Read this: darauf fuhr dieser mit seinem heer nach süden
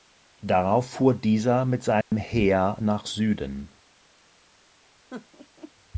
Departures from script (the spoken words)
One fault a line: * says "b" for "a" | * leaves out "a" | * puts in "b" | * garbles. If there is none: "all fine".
all fine